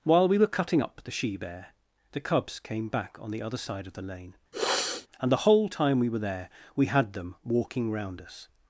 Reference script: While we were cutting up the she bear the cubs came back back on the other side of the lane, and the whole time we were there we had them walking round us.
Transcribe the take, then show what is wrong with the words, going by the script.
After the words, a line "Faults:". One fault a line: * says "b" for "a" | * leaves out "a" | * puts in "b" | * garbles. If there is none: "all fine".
While we were cutting up the she bear the cubs came back on the other side of the lane, and the whole time we were there we had them walking round us.
Faults:
* leaves out "back"